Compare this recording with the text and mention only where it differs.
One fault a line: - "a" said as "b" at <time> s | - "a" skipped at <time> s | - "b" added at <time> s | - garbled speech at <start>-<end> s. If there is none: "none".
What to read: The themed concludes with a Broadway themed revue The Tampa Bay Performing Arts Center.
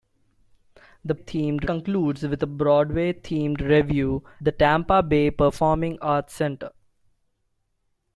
none